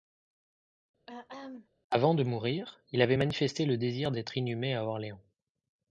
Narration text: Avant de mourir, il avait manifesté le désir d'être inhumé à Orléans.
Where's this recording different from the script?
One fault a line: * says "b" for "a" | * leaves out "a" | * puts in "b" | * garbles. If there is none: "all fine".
all fine